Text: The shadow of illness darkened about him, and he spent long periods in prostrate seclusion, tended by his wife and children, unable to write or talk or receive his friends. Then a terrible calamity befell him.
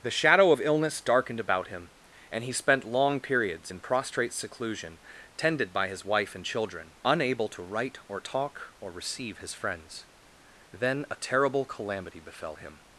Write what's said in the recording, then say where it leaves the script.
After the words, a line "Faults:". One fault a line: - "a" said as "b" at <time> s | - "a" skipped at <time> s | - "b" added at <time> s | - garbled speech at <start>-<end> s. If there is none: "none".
The shadow of illness darkened about him, and he spent long periods in prostrate seclusion, tended by his wife and children, unable to write or talk or receive his friends. Then a terrible calamity befell him.
Faults:
none